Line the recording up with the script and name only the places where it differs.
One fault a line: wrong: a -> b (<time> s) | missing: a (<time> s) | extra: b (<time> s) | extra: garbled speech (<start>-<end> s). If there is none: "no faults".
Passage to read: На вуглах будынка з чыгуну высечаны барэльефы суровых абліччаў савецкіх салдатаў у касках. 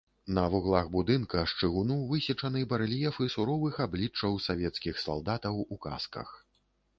no faults